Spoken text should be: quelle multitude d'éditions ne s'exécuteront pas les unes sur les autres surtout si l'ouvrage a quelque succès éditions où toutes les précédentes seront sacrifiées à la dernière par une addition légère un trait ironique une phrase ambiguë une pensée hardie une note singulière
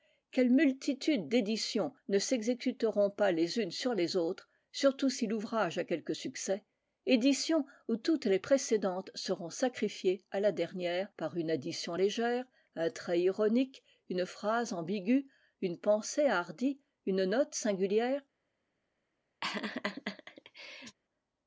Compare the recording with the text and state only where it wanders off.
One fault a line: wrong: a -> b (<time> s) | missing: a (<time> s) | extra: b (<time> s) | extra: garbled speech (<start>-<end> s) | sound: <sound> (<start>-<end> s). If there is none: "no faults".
sound: laugh (19.4-21.0 s)